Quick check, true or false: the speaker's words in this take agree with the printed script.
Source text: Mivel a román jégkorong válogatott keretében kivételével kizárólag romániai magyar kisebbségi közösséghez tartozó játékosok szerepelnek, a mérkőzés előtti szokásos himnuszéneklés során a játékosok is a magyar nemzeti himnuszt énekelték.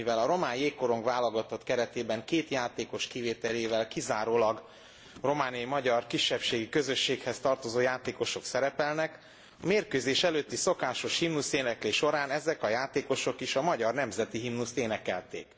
false